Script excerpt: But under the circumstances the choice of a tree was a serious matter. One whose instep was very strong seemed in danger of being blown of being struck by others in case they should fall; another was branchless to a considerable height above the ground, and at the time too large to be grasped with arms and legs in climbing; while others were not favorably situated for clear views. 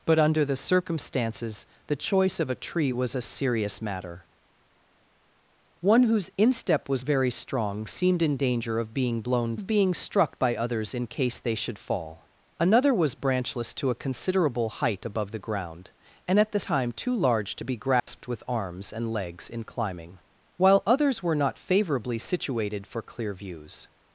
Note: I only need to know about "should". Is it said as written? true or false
true